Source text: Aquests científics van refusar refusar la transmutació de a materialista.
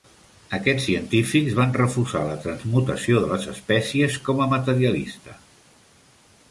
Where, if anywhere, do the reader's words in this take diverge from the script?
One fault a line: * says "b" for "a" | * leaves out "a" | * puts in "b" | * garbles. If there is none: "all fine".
* leaves out "refusar"
* puts in "les espècies com"